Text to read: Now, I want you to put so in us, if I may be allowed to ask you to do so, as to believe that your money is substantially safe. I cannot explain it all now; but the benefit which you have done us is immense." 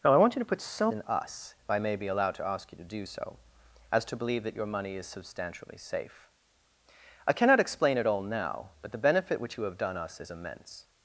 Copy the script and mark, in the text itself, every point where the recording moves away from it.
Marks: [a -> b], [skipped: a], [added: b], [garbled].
Now, I want you to put so in us, if I may be allowed to ask you to do so, as to believe that your money is substantially safe. I cannot explain it all now; but the benefit which you have done us is immense."